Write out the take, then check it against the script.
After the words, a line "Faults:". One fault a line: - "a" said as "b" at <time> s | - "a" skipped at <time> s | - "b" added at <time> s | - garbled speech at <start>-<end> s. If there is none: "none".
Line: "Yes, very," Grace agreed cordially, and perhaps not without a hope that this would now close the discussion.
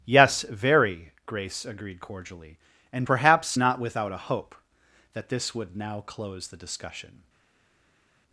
"Yes, very," Grace agreed cordially, and perhaps not without a hope that this would now close the discussion.
Faults:
none